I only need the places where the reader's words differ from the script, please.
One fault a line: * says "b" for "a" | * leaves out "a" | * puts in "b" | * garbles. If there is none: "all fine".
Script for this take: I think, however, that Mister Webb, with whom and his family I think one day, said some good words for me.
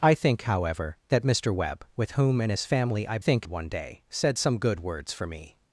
all fine